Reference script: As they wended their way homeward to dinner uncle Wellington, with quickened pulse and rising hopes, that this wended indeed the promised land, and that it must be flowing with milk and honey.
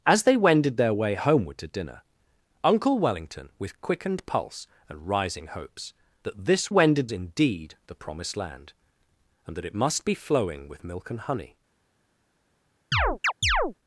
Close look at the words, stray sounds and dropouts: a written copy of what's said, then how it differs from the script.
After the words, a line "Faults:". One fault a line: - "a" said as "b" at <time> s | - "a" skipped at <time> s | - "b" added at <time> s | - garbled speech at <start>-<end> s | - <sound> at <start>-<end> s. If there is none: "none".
As they wended their way homeward to dinner uncle Wellington, with quickened pulse and rising hopes, that this wended indeed the promised land, and that it must be flowing with milk and honey.
Faults:
- chirp at 12.9-13.7 s